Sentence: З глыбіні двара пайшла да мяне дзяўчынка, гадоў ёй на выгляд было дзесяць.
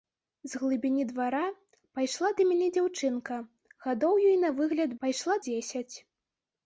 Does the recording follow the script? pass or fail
fail